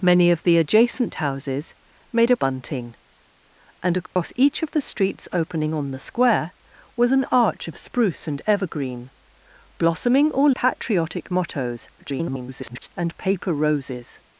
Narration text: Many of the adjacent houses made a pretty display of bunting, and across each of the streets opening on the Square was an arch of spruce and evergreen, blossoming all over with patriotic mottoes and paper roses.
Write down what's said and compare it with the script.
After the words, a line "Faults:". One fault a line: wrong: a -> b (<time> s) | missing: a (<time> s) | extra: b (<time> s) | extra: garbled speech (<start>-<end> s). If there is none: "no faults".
Many of the adjacent houses made a bunting, and across each of the streets opening on the Square was an arch of spruce and evergreen, blossoming all patriotic mottoes [garbled] and paper roses.
Faults:
missing: pretty display of (2.4 s)
missing: over with (10.6 s)
extra: garbled speech (12.0-12.9 s)